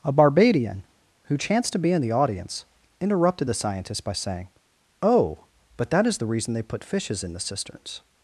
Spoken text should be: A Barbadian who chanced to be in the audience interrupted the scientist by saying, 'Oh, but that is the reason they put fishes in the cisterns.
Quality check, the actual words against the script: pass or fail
pass